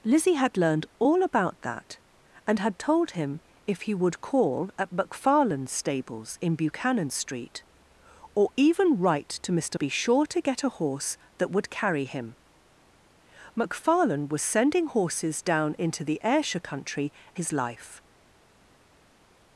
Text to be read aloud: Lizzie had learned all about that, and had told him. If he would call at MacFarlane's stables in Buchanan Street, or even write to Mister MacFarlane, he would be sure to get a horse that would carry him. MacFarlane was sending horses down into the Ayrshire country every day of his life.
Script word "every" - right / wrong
wrong